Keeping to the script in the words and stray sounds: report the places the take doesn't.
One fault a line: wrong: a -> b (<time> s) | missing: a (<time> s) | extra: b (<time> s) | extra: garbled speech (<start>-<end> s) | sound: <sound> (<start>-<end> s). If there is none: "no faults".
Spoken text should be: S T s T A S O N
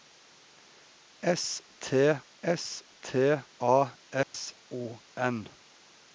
sound: dropout (4.2-4.3 s)